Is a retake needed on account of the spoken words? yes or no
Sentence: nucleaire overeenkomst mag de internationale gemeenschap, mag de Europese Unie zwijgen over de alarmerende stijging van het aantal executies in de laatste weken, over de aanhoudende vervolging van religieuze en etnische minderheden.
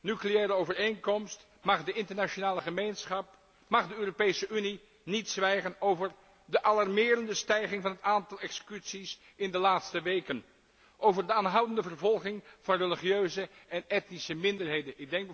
yes